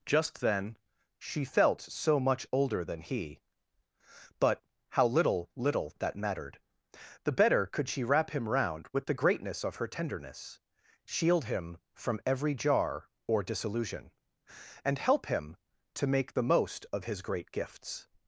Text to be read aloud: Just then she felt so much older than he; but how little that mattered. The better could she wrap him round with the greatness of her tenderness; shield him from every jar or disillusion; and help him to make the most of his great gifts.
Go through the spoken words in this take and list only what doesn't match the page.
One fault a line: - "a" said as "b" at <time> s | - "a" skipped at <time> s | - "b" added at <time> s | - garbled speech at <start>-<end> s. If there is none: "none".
- "little" added at 5.5 s